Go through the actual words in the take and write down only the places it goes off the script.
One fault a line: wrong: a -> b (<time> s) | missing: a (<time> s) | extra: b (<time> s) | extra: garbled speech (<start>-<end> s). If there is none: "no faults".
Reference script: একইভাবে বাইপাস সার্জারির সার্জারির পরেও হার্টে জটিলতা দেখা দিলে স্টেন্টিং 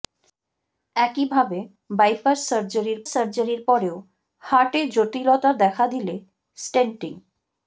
no faults